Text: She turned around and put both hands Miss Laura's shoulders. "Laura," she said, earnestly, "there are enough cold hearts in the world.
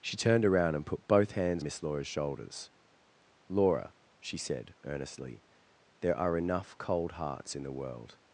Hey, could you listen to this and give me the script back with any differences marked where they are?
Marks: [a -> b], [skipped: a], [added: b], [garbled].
She turned around and put both hands Miss Laura's shoulders. "Laura," she said, earnestly, "there are enough cold hearts in the world.